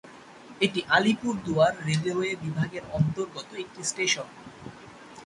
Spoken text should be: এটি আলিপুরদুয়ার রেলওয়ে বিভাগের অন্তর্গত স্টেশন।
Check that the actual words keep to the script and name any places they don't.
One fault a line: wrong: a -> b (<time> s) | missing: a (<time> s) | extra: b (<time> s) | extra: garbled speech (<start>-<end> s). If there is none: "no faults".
extra: একটি (3.5 s)